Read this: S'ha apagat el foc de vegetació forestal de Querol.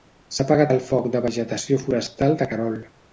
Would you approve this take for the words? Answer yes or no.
yes